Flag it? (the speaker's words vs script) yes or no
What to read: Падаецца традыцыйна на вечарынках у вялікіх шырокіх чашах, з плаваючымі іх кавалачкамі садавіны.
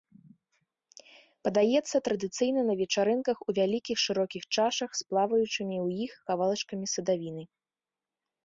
yes